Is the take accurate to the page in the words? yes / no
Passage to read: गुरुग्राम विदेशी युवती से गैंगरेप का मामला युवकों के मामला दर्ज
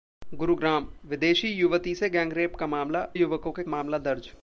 yes